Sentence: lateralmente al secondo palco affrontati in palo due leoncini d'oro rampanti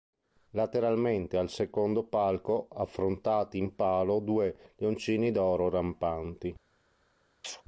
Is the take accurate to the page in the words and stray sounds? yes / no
no